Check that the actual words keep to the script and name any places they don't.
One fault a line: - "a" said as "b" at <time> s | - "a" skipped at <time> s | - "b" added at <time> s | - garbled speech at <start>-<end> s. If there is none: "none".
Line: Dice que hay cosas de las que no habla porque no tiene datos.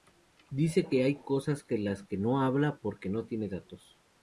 none